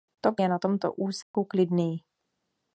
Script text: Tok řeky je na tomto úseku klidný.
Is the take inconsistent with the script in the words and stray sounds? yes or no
yes